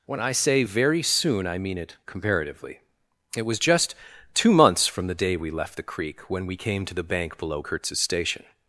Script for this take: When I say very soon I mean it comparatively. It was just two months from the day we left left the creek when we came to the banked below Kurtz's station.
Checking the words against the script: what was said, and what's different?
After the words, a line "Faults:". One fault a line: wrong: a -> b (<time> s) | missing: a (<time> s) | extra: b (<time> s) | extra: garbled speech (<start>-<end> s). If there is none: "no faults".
When I say very soon I mean it comparatively. It was just two months from the day we left the creek when we came to the bank below Kurtz's station.
Faults:
missing: left (5.8 s)
wrong: banked -> bank (7.0 s)